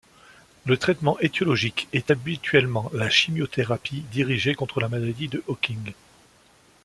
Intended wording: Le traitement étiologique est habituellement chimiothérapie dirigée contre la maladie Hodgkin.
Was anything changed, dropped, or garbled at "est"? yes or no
no